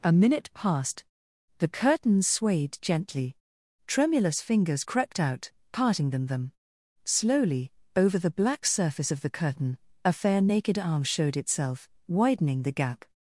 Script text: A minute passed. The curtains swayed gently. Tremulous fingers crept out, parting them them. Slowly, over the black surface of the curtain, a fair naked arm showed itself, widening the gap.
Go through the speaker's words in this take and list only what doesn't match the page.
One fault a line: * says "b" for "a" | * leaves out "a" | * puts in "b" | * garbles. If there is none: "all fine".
all fine